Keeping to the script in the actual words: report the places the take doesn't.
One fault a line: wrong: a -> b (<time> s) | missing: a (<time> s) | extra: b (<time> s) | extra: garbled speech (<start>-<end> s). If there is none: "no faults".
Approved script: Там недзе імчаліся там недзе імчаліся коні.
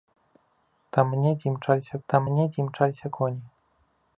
no faults